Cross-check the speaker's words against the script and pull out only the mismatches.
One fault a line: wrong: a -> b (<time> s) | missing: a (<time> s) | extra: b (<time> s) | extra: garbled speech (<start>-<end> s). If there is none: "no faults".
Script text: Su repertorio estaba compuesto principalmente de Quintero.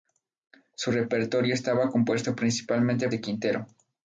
no faults